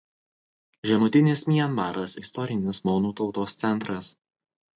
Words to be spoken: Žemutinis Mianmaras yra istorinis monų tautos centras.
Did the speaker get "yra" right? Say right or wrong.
wrong